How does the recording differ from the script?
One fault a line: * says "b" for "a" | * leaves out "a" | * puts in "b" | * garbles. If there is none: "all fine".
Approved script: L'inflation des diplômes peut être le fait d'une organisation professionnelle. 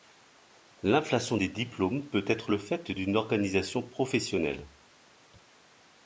all fine